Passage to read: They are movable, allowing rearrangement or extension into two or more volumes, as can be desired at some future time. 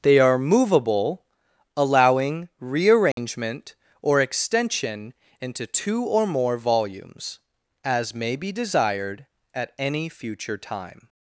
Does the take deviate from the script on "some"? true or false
true